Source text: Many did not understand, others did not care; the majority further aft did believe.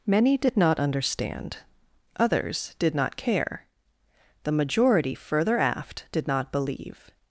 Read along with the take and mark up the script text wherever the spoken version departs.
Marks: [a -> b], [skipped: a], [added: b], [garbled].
Many did not understand, others did not care; the majority further aft did [added: not] believe.